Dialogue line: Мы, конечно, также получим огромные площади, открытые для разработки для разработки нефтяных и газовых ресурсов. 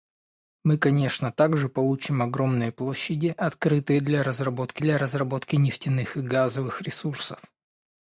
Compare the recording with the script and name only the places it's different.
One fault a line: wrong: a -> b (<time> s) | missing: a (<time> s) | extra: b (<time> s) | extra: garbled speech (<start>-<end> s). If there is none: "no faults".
no faults